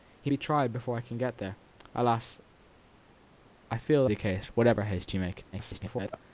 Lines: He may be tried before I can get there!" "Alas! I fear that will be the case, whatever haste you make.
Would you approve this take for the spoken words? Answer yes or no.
no